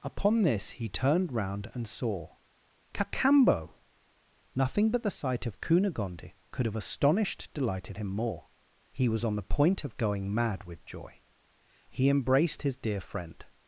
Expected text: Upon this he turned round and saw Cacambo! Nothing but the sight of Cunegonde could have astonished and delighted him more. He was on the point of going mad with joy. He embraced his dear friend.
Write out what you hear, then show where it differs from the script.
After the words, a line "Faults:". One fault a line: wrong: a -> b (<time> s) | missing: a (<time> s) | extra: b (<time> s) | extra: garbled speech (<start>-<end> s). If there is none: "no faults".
Upon this he turned round and saw Cacambo! Nothing but the sight of Cunegonde could have astonished delighted him more. He was on the point of going mad with joy. He embraced his dear friend.
Faults:
missing: and (7.5 s)